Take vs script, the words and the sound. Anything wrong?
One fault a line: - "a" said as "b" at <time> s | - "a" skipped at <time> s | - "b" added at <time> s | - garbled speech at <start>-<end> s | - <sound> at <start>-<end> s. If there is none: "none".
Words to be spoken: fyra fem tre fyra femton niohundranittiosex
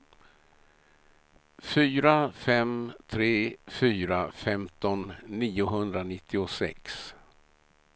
none